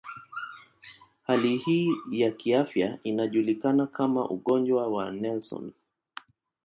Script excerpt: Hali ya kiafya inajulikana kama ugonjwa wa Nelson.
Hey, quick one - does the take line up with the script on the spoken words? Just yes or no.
no